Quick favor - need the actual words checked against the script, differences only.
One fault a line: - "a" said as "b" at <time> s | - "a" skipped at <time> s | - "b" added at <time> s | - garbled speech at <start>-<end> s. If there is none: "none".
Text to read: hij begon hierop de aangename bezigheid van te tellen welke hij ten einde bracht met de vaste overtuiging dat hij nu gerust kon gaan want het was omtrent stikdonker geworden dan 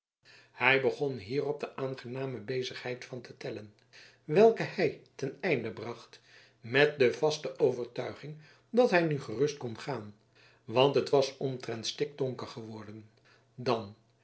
none